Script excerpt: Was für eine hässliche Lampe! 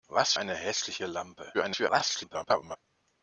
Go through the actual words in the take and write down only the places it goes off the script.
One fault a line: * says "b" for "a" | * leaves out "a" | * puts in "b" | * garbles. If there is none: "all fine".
* leaves out "für"
* garbles